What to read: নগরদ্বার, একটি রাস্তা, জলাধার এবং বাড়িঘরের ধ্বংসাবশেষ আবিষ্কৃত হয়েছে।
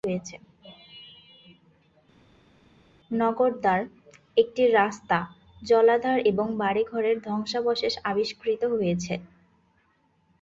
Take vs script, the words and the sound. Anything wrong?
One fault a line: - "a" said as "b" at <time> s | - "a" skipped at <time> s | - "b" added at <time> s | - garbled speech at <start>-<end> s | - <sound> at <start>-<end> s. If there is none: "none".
none